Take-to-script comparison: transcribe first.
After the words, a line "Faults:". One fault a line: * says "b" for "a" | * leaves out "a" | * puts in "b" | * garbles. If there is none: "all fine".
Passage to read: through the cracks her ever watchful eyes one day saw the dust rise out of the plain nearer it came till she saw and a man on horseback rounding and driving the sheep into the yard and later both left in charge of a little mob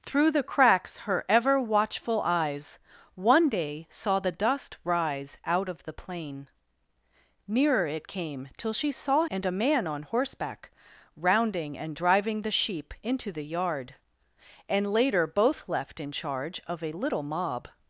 through the cracks her ever watchful eyes one day saw the dust rise out of the plain nearer it came till she saw and a man on horseback rounding and driving the sheep into the yard and later both left in charge of a little mob
Faults:
all fine